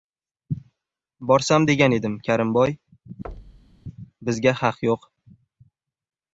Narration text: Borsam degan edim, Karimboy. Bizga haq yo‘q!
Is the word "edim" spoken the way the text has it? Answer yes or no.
yes